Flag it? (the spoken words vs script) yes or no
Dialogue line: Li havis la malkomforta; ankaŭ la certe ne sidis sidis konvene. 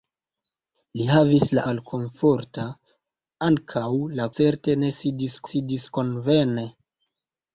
no